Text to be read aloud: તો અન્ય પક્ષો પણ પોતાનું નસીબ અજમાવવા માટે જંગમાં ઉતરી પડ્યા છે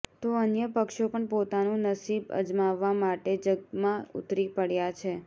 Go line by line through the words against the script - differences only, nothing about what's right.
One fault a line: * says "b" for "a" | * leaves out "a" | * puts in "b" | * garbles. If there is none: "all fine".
all fine